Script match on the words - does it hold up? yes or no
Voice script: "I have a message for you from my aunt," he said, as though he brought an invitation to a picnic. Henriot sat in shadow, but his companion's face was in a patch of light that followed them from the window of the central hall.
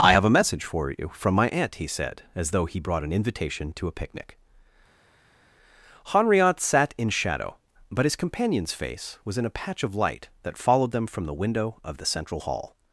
yes